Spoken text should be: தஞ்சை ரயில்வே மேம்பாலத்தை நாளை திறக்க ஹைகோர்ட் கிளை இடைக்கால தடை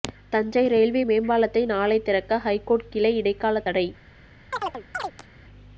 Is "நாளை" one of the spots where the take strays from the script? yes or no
no